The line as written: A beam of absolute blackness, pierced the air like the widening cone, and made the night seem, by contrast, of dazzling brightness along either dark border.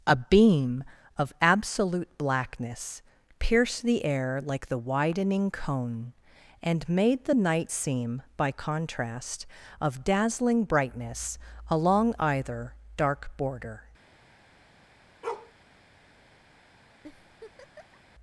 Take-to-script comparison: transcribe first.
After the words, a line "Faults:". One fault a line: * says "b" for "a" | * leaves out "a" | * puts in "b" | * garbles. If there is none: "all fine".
A beam of absolute blackness, pierced the air like the widening cone, and made the night seem, by contrast, of dazzling brightness along either dark border.
Faults:
all fine